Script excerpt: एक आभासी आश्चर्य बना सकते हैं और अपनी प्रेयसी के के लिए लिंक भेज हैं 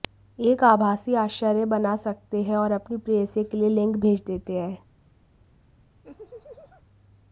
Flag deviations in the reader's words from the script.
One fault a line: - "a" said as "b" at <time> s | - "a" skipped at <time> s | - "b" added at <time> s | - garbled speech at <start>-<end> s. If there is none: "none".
- "के" skipped at 3.6 s
- "देते" added at 4.3 s